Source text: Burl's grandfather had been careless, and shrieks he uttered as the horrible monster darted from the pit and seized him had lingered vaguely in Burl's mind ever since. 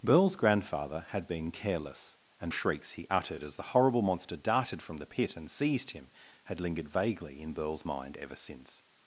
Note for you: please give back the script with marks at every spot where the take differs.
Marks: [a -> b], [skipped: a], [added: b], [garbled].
Burl's grandfather had been careless, and shrieks he uttered as the horrible monster darted from the pit and seized him had lingered vaguely in Burl's mind ever since.